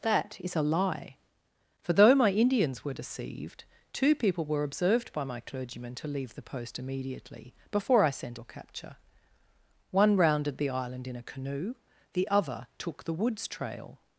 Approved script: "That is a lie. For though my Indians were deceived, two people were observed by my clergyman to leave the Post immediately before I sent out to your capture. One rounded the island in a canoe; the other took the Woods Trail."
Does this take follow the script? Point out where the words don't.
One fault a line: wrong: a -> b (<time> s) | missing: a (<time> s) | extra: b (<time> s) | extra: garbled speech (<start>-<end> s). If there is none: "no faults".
missing: out to (8.4 s)